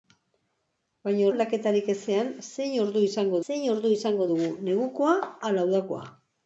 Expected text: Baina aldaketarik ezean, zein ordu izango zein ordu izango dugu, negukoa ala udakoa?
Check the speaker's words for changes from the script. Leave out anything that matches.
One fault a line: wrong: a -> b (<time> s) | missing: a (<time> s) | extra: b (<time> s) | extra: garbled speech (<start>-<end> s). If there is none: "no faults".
no faults